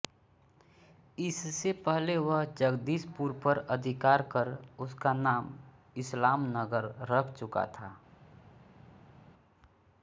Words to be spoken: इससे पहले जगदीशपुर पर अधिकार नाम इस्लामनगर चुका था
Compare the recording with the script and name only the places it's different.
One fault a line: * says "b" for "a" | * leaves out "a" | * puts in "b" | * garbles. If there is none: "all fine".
* puts in "वह"
* puts in "कर उसका"
* puts in "रख"